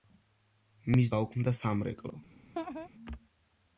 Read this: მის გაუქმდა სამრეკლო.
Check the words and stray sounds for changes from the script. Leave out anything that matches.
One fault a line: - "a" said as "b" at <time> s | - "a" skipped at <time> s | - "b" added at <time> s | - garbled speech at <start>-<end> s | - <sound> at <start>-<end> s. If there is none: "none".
- laugh at 2.5-2.9 s